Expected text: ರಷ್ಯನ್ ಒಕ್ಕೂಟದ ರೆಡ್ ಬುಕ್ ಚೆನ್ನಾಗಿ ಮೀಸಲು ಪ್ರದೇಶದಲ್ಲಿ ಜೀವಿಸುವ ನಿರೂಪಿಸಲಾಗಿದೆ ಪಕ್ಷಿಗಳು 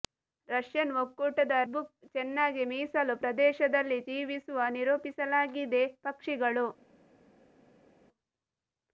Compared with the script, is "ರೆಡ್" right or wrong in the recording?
wrong